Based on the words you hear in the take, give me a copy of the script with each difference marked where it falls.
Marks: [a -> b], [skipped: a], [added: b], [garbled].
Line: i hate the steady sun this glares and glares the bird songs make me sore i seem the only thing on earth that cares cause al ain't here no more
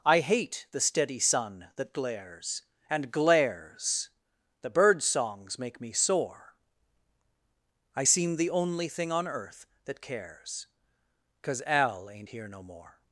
i hate the steady sun [this -> that] glares and glares the bird songs make me sore i seem the only thing on earth that cares cause al ain't here no more